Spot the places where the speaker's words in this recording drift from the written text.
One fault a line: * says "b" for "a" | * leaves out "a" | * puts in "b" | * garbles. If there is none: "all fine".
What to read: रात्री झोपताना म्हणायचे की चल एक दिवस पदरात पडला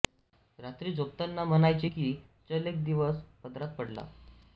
all fine